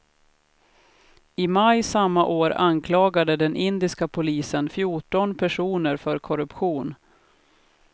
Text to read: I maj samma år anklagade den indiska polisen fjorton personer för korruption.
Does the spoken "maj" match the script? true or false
true